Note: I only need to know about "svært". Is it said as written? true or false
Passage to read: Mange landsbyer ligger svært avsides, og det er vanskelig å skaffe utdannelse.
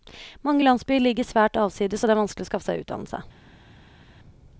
true